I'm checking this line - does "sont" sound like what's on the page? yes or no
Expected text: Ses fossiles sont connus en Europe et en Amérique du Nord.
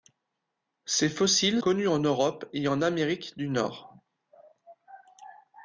no